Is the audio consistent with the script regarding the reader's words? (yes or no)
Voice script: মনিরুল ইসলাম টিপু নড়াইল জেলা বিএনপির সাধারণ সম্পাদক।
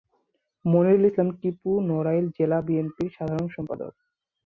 yes